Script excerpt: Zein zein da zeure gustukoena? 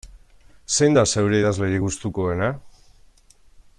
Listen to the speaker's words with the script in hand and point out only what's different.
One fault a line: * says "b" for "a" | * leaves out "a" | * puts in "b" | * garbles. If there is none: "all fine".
* leaves out "zein"
* puts in "idazlerik"